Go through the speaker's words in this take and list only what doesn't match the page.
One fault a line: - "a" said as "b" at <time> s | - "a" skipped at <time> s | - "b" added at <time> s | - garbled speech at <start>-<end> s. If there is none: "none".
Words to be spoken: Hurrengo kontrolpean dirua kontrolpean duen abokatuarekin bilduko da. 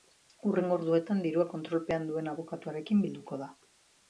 - "kontrolpean" said as "orduetan" at 0.8 s